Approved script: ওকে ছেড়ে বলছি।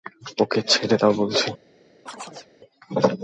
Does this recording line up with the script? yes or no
no